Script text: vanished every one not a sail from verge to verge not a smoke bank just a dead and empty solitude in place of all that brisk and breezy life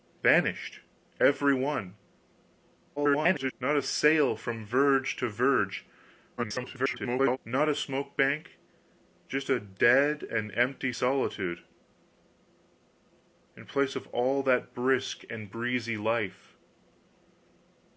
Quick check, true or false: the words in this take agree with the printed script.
false